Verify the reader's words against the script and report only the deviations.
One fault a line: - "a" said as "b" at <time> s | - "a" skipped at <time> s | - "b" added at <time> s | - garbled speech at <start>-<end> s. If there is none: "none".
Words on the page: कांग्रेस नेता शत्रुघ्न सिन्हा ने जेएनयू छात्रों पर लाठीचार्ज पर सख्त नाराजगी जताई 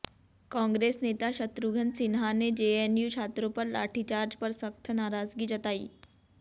none